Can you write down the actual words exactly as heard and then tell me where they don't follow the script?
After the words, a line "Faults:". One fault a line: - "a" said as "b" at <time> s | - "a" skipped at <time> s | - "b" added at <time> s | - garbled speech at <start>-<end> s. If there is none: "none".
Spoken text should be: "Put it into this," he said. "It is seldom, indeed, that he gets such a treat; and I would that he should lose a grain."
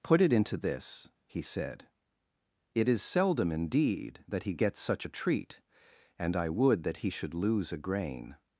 "Put it into this," he said. "It is seldom, indeed, that he gets such a treat; and I would that he should lose a grain."
Faults:
none